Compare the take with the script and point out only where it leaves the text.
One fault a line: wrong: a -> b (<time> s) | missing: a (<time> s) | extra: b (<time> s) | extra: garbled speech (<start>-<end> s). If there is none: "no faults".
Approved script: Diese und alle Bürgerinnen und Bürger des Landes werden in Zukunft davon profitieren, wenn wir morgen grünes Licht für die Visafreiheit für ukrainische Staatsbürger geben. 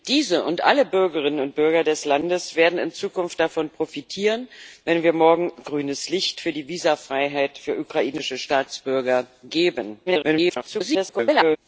extra: garbled speech (10.1-11.6 s)